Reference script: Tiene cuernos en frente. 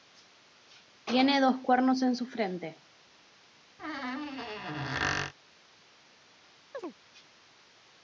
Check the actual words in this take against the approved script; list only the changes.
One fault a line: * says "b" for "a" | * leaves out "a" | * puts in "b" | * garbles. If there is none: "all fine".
* puts in "dos"
* puts in "su"